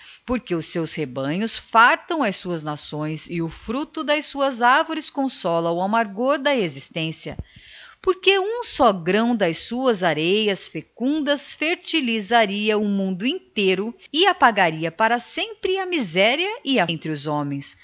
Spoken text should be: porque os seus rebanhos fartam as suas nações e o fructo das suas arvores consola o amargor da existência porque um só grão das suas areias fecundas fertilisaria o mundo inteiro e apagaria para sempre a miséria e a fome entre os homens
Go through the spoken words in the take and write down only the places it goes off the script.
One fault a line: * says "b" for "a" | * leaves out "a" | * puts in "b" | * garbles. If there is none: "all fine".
* leaves out "fome"